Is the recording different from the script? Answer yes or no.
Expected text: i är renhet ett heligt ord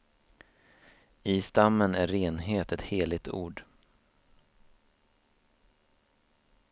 yes